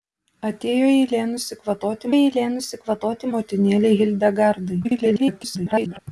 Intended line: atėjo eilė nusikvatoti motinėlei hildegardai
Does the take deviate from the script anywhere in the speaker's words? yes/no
yes